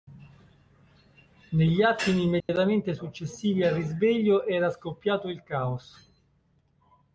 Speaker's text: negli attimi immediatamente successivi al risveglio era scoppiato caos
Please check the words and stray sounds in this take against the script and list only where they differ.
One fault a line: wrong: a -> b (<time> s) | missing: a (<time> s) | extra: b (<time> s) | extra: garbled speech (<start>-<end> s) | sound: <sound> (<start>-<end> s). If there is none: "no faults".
sound: dropout (2.4-2.5 s)
extra: il (5.3 s)